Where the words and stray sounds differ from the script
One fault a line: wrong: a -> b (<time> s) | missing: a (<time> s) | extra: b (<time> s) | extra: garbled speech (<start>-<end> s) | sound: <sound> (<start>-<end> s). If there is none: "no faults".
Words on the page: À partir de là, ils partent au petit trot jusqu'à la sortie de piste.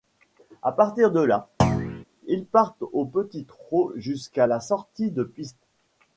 sound: thud (1.6-2.0 s)